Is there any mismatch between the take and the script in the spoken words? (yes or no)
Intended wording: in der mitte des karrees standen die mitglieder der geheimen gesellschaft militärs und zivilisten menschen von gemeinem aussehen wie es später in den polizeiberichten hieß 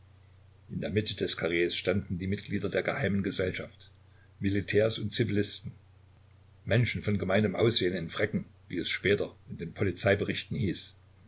yes